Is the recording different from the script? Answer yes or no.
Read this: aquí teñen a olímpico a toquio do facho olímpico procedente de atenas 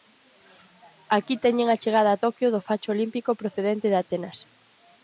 yes